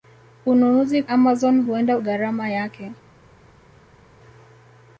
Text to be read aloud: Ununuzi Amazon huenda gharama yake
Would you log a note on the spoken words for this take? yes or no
no